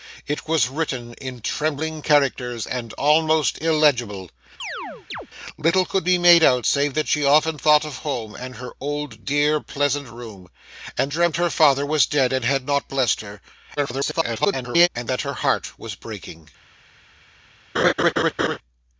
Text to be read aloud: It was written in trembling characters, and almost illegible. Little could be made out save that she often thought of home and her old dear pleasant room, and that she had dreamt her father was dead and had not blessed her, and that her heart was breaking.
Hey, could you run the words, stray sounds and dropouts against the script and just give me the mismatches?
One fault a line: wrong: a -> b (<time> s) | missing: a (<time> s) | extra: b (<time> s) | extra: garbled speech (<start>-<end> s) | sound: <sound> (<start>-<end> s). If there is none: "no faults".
sound: chirp (4.6-5.3 s)
missing: that she had (11.1 s)
extra: garbled speech (13.8-14.9 s)
sound: laugh (17.7-18.6 s)